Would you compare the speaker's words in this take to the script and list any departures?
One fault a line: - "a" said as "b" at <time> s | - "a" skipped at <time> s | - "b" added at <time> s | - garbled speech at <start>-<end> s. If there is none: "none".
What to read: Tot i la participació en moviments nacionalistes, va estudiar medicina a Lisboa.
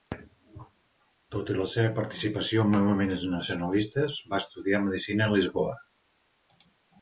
- "seva" added at 1.7 s